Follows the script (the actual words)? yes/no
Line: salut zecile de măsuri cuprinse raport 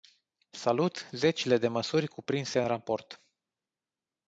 yes